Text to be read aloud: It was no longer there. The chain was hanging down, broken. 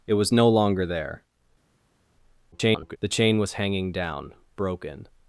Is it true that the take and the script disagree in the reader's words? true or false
true